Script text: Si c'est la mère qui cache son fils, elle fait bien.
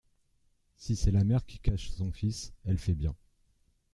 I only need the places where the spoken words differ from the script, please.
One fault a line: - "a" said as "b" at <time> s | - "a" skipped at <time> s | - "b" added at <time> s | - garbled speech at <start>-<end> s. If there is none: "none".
none